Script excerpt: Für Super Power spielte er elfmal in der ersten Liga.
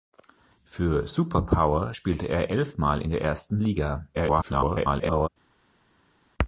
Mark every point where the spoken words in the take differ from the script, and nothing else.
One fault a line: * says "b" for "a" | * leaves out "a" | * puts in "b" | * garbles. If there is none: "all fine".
* garbles